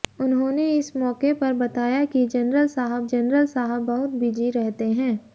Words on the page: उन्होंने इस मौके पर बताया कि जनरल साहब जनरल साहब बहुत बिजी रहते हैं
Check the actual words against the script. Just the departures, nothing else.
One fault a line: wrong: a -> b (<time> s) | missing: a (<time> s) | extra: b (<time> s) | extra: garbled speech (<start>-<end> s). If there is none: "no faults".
no faults